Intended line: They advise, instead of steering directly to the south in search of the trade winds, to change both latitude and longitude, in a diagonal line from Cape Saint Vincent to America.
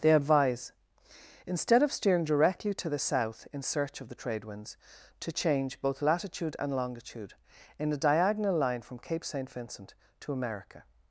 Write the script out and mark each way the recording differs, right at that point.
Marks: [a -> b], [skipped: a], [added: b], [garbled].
They advise, instead of steering directly to the south in search of the trade winds, to change both latitude and longitude, in a diagonal line from Cape Saint Vincent to America.